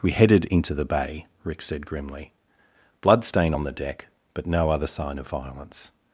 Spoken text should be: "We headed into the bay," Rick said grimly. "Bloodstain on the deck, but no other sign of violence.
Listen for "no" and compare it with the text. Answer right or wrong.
right